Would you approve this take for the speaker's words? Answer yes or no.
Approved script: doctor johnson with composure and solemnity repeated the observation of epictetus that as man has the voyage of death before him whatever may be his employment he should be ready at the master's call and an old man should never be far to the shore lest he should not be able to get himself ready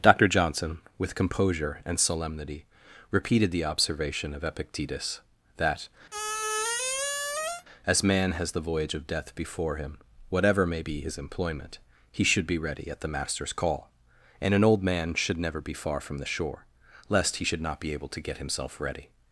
no